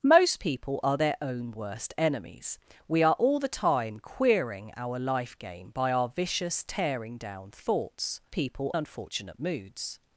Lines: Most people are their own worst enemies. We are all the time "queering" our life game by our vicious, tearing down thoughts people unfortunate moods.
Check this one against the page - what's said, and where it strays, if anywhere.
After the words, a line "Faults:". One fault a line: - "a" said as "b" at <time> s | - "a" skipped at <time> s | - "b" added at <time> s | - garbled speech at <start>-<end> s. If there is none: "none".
Most people are their own worst enemies. We are all the time "queering" our life game by our vicious, tearing down thoughts people unfortunate moods.
Faults:
none